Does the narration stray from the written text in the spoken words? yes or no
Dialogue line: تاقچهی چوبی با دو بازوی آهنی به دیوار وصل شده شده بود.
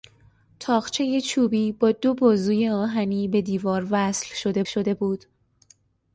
no